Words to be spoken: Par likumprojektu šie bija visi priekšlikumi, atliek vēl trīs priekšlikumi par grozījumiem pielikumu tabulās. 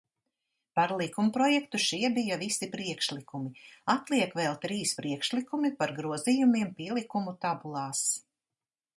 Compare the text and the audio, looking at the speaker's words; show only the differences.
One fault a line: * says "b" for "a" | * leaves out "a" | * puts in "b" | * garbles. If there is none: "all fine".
all fine